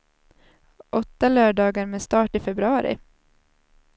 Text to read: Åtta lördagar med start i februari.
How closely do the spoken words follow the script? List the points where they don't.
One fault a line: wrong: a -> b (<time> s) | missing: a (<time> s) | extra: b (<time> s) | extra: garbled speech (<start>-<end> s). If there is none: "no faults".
no faults